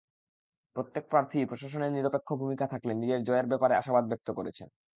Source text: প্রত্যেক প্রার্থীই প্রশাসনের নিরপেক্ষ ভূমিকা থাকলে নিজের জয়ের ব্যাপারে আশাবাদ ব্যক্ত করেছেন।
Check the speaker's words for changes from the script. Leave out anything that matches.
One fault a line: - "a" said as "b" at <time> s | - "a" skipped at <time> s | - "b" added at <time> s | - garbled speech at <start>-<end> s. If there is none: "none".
none